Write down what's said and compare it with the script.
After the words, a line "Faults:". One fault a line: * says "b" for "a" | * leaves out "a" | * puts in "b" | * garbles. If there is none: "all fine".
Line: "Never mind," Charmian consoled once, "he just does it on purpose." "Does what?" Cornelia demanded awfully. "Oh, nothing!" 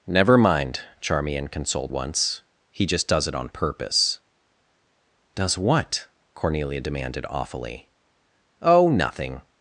"Never mind," Charmian consoled once, "he just does it on purpose." "Does what?" Cornelia demanded awfully. "Oh, nothing!"
Faults:
all fine